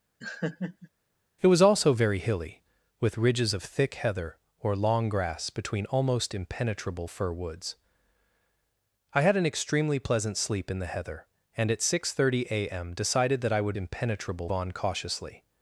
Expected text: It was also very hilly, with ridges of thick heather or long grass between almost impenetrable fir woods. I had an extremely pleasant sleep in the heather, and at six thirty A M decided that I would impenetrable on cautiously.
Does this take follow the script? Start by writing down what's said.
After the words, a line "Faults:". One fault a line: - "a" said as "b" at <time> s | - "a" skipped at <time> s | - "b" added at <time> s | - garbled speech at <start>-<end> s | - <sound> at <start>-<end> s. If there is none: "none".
It was also very hilly, with ridges of thick heather or long grass between almost impenetrable fir woods. I had an extremely pleasant sleep in the heather, and at six thirty A M decided that I would impenetrable on cautiously.
Faults:
- laugh at 0.2-0.9 s